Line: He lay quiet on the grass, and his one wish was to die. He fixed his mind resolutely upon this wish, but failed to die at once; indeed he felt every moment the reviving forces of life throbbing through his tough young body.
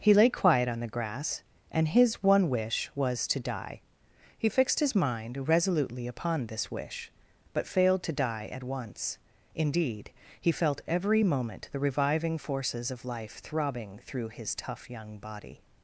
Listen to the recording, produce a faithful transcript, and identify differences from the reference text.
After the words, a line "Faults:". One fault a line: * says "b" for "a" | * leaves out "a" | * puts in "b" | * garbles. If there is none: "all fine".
He lay quiet on the grass, and his one wish was to die. He fixed his mind resolutely upon this wish, but failed to die at once; indeed he felt every moment the reviving forces of life throbbing through his tough young body.
Faults:
all fine